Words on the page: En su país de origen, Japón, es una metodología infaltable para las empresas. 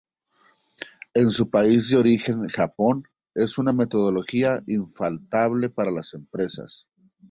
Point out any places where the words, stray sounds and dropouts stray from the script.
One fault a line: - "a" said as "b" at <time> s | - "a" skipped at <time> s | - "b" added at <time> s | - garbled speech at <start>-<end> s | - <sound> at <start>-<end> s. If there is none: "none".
none